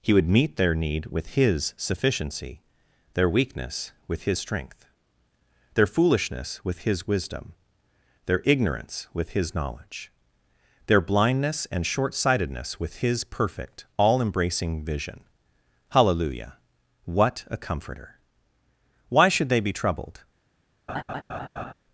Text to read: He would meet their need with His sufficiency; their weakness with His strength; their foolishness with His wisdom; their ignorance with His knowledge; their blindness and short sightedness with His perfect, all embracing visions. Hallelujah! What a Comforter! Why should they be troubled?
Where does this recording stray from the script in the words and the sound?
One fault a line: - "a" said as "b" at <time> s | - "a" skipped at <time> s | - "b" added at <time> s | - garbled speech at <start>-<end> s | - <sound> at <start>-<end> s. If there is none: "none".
- "visions" said as "vision" at 14.8 s
- laugh at 20.9-21.7 s